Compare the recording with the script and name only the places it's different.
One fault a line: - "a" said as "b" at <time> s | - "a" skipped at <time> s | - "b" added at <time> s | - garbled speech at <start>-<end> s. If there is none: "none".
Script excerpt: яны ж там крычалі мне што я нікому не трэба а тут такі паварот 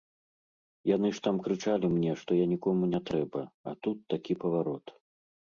none